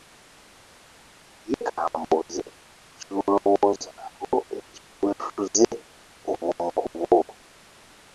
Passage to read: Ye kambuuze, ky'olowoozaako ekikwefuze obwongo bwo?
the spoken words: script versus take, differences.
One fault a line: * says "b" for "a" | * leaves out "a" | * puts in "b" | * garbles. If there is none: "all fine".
all fine